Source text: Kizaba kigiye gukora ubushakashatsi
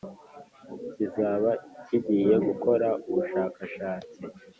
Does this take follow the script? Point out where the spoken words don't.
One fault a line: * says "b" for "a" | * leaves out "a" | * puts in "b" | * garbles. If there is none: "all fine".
all fine